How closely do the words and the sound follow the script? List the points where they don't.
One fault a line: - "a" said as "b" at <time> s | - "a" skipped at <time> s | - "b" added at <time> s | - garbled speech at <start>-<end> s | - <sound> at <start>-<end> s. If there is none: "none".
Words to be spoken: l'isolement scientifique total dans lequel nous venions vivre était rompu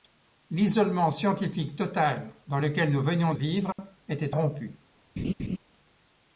- dropout at 3.7-3.8 s
- laugh at 5.2-5.6 s